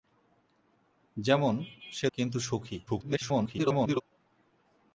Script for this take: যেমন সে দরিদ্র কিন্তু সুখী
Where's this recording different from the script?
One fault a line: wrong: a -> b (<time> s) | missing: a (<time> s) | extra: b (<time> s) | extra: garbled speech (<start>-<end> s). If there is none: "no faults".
missing: দরিদ্র (2.1 s)
extra: garbled speech (2.9-4.0 s)